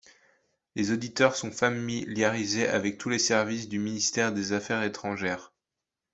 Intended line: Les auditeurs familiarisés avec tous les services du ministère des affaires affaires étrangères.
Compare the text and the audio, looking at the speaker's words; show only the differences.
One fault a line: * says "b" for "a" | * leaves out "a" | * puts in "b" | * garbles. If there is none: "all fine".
* puts in "sont"
* leaves out "affaires"